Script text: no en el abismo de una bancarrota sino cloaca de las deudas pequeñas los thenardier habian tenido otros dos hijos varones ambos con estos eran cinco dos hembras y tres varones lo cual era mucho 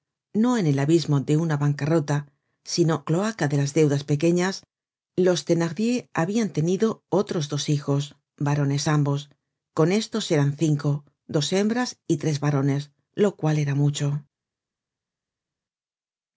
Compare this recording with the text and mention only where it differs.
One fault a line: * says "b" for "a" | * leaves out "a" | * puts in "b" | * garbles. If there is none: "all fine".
all fine